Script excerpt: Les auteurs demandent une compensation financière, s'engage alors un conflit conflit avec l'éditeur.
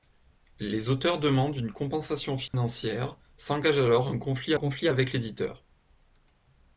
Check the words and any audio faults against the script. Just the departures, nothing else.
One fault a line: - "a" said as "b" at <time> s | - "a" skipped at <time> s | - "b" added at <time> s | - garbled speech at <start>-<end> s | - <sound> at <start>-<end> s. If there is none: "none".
- dropout at 2.5-2.5 s